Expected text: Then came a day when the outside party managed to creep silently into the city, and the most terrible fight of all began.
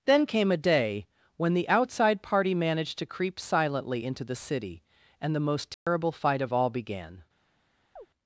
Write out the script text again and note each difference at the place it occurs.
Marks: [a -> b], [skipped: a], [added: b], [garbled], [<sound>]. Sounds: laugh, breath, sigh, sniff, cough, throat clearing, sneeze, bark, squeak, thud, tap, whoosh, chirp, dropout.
Then came a day when the outside party managed to creep silently into the city, and the most terrible [dropout] fight of all began. [chirp]